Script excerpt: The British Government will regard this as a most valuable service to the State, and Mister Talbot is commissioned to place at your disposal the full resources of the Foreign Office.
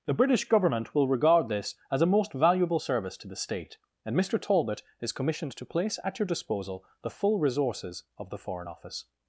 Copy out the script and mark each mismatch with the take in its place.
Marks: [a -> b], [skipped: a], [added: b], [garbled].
The British Government will regard this as a most valuable service to the State, and Mister Talbot is commissioned to place at your disposal the full resources of the Foreign Office.